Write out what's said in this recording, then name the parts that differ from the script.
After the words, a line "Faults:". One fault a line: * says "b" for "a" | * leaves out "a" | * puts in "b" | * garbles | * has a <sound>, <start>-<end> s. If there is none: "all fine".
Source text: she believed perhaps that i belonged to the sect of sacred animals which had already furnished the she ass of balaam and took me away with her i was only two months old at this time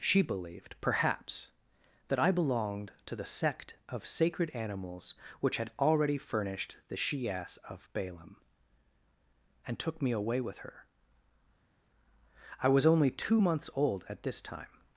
she believed perhaps that i belonged to the sect of sacred animals which had already furnished the she ass of balaam and took me away with her i was only two months old at this time
Faults:
all fine